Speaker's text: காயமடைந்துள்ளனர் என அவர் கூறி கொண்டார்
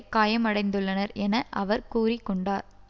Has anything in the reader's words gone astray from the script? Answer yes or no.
no